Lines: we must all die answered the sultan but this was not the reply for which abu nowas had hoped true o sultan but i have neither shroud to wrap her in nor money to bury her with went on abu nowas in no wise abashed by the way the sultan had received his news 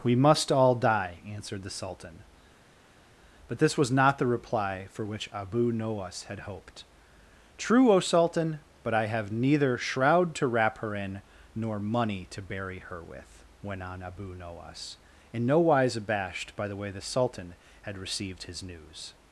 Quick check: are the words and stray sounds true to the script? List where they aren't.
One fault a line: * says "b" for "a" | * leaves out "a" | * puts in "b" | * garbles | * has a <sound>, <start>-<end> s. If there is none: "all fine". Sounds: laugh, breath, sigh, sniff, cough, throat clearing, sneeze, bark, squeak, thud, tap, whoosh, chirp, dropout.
all fine